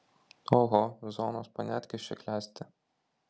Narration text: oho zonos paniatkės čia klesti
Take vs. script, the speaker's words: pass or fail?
pass